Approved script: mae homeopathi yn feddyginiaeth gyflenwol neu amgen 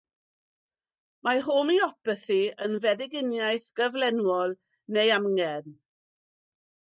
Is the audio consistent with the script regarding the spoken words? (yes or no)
yes